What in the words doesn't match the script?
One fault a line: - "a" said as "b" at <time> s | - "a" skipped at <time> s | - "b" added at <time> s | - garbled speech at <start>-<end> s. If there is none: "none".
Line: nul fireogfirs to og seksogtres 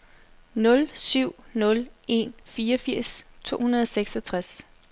- "syv nul en" added at 0.9 s
- "hundrede" added at 3.6 s